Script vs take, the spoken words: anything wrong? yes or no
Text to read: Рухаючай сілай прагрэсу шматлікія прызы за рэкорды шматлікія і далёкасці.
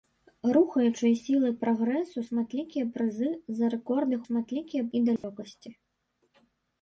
no